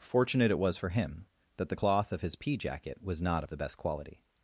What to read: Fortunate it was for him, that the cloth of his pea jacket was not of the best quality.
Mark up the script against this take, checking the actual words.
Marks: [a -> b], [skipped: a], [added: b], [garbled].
Fortunate it was for him, that the cloth of his pea jacket was not of the best quality.